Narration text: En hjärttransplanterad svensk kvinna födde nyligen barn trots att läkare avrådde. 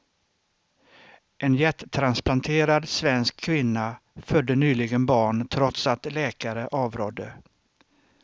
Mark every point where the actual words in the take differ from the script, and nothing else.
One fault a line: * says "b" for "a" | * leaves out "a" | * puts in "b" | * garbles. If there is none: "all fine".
all fine